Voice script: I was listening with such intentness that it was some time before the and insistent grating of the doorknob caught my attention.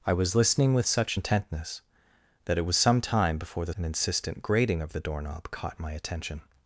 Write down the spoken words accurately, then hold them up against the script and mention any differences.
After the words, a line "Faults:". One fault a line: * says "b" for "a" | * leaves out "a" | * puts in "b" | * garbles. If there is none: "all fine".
I was listening with such intentness that it was some time before the and insistent grating of the doorknob caught my attention.
Faults:
all fine